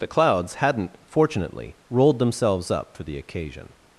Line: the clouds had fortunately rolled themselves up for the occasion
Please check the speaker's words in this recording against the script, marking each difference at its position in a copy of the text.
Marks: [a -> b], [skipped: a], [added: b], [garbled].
the clouds [had -> hadn't] fortunately rolled themselves up for the occasion